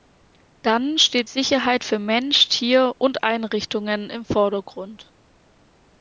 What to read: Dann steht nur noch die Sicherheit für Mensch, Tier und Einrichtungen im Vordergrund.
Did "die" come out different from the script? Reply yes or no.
yes